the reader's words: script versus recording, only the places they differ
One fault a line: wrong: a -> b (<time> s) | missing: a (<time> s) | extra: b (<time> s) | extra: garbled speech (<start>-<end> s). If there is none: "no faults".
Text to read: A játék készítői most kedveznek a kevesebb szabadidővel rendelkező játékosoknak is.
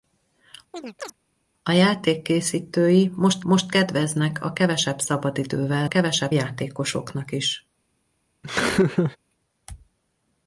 extra: most (3.4 s)
wrong: rendelkező -> kevesebb (5.9 s)